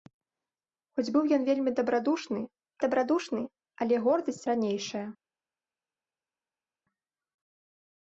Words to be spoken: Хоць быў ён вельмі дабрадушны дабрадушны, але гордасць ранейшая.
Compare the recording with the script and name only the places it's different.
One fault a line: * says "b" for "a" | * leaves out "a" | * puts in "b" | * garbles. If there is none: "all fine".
all fine